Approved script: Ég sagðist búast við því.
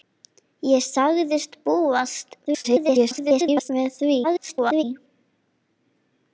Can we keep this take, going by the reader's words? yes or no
no